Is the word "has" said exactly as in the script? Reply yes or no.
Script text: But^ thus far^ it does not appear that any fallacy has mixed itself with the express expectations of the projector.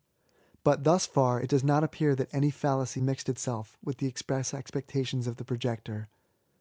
no